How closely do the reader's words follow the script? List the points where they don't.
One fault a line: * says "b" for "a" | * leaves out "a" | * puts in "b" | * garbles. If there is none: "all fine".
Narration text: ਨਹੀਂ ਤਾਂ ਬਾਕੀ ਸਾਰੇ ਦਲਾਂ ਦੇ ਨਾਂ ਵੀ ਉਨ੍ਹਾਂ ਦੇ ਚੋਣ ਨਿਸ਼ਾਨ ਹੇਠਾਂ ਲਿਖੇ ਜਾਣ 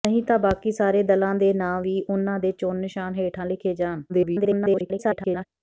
* garbles